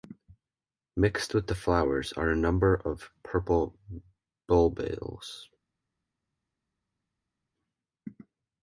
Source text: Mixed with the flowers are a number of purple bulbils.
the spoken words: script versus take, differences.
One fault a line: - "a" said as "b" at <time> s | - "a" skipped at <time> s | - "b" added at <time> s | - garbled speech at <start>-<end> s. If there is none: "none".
none